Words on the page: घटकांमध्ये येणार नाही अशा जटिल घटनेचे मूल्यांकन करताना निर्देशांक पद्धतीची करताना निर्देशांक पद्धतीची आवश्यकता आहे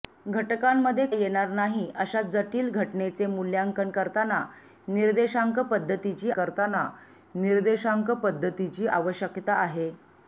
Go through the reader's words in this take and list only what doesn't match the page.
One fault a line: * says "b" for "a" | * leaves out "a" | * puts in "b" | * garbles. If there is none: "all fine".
all fine